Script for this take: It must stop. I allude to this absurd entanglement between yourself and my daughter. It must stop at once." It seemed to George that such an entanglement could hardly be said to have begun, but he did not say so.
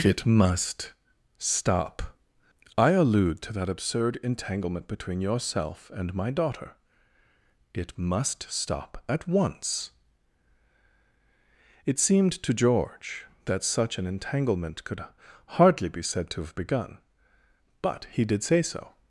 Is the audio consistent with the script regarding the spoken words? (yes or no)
no